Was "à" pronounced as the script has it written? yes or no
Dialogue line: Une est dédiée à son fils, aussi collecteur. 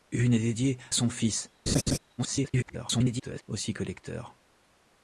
no